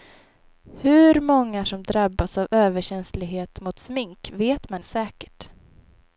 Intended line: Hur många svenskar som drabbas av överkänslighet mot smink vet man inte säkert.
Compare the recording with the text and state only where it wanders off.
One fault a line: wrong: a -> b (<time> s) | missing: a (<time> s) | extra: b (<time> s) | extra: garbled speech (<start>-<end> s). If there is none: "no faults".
missing: svenskar (1.6 s)
missing: inte (4.8 s)